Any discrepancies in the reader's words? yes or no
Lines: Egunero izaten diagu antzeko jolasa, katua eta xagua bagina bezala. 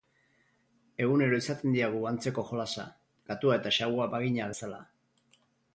no